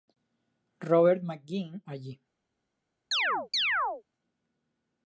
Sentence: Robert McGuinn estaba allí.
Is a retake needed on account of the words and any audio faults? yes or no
yes